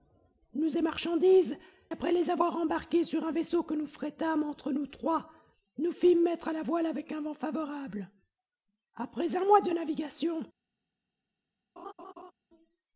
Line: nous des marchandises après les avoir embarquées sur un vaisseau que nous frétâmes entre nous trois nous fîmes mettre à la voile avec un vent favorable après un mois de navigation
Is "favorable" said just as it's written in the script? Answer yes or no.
yes